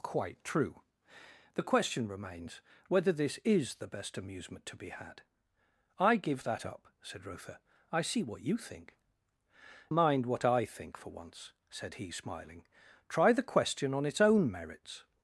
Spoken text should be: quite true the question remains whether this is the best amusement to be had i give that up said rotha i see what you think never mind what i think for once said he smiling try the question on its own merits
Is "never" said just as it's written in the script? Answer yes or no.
no